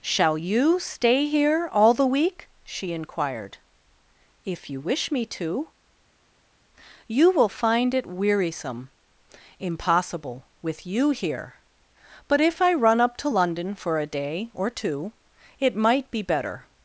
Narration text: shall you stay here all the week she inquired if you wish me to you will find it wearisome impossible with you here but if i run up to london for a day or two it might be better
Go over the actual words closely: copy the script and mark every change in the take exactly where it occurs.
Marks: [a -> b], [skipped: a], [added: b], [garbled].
shall you stay here all the week she inquired if you wish me to you will find it wearisome impossible with you here but if i run up to london for a day or two it might be better